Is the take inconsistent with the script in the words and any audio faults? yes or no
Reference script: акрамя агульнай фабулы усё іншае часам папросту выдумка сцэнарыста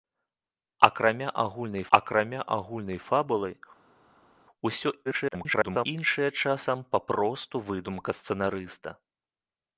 yes